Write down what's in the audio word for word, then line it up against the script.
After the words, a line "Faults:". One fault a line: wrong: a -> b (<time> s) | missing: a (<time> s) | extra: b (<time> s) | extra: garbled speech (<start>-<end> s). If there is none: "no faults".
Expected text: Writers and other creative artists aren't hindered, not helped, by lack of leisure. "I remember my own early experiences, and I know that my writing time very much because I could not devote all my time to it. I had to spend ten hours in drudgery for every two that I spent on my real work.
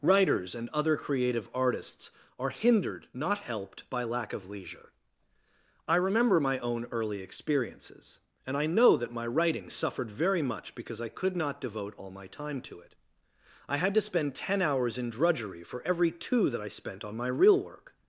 Writers and other creative artists are hindered, not helped, by lack of leisure. "I remember my own early experiences, and I know that my writing suffered very much because I could not devote all my time to it. I had to spend ten hours in drudgery for every two that I spent on my real work.
Faults:
wrong: aren't -> are (2.4 s)
wrong: time -> suffered (9.7 s)